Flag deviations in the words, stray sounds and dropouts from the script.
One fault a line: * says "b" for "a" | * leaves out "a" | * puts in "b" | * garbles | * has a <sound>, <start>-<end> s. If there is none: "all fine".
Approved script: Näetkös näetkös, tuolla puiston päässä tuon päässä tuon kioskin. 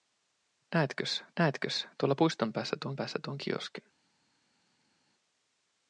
all fine